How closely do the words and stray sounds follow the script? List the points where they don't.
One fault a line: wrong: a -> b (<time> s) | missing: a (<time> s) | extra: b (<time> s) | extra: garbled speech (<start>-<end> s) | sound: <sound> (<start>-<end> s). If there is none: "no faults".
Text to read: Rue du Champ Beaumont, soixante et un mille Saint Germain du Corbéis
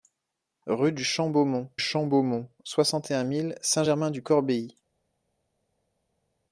extra: Champ Beaumont (1.8 s)